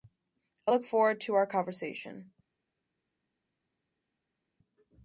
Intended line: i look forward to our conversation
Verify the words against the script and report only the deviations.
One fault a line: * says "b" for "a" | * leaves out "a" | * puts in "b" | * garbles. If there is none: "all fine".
all fine